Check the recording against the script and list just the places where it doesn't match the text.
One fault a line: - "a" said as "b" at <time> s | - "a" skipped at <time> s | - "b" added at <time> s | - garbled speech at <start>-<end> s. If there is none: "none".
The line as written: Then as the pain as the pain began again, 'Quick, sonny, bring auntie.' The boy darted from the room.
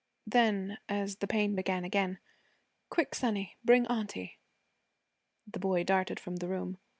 - "as the pain" skipped at 1.6 s